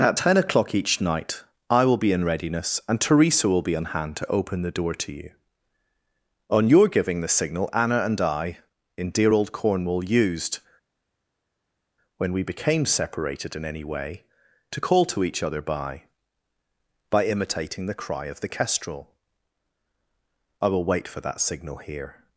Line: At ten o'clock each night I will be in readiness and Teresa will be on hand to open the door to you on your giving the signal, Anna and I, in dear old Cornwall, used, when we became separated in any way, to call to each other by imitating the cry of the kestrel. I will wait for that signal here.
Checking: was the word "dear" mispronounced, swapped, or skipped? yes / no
no